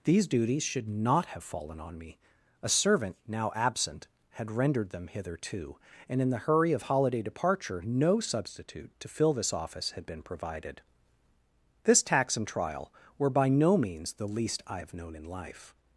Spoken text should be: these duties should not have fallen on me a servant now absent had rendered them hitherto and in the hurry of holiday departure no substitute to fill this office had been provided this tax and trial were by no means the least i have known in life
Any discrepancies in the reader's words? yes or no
no